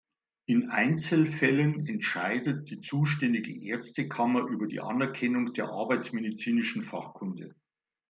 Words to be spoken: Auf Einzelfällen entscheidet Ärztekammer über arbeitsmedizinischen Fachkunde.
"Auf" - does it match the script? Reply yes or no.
no